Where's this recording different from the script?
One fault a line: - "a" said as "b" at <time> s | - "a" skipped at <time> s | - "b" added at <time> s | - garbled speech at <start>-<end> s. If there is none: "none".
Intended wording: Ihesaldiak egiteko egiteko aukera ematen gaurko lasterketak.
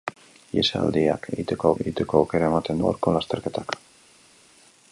none